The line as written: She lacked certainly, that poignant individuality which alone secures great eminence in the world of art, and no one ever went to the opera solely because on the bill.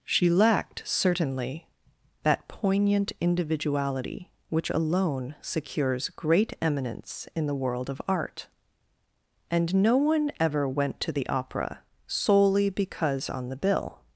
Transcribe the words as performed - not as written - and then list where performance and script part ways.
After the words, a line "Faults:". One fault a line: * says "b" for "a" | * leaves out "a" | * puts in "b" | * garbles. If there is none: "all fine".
She lacked certainly, that poignant individuality which alone secures great eminence in the world of art, and no one ever went to the opera solely because on the bill.
Faults:
all fine